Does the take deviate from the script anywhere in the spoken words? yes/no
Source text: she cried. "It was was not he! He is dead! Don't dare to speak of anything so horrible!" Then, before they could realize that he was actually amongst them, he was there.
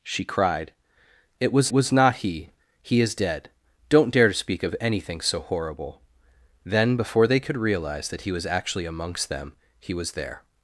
no